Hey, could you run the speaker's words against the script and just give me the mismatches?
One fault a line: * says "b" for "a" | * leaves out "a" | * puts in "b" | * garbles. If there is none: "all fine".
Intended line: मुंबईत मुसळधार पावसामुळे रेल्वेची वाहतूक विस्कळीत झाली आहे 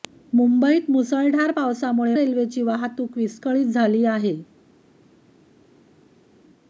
all fine